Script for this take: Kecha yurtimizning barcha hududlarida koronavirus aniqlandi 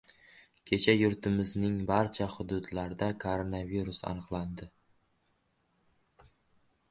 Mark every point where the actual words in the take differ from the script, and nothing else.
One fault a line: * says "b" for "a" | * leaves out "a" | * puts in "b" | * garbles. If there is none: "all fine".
all fine